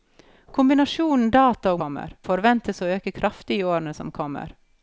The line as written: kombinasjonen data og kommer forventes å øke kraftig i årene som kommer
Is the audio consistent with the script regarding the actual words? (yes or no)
yes